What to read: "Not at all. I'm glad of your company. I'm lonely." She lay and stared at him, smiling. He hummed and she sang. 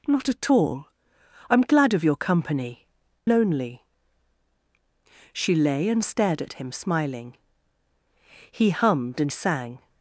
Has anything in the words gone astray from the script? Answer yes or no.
yes